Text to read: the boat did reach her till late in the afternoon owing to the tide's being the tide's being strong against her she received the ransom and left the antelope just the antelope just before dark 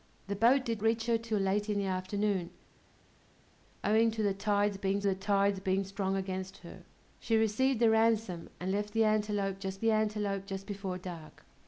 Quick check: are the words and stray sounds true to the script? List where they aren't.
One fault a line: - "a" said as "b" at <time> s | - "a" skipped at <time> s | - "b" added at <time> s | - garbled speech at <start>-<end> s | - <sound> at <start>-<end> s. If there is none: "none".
none